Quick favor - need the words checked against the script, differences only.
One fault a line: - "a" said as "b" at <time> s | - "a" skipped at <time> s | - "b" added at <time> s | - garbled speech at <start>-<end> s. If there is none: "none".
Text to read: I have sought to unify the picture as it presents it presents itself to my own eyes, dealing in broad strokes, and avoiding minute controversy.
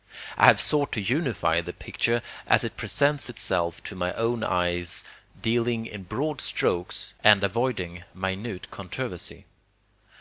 - "it presents" skipped at 3.3 s